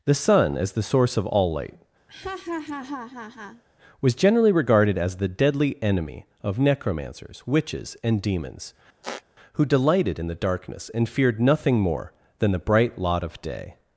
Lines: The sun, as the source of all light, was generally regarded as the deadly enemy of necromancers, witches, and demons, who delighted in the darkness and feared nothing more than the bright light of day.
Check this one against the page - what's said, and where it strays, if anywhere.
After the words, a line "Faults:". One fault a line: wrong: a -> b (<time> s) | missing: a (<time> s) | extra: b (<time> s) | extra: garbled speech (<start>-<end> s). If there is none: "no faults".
The sun, as the source of all light, was generally regarded as the deadly enemy of necromancers, witches, and demons, who delighted in the darkness and feared nothing more than the bright lot of day.
Faults:
wrong: light -> lot (13.0 s)